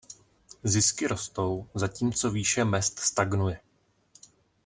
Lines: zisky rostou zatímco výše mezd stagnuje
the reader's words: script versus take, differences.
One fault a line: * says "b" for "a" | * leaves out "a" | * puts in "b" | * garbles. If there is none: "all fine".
all fine